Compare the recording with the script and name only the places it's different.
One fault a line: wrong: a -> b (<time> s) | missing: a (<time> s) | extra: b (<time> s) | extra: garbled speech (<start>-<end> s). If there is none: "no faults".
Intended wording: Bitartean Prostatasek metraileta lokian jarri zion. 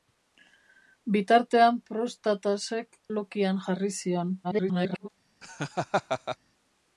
missing: metraileta (3.0 s)
extra: garbled speech (4.4-5.1 s)